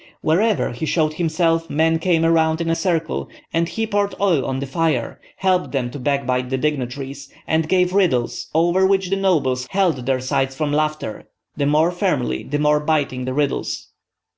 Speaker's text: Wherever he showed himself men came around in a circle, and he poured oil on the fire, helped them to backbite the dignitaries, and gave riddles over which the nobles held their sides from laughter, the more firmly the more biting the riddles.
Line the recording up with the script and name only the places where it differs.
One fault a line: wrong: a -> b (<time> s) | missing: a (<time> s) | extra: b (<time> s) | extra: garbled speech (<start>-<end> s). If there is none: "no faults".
no faults